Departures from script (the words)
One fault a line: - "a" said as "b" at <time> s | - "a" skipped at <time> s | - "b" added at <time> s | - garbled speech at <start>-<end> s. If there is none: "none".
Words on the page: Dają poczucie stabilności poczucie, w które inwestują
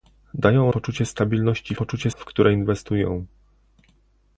none